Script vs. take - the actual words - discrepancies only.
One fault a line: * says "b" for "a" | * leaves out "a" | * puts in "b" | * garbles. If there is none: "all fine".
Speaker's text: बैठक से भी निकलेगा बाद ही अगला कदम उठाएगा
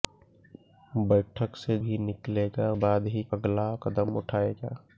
all fine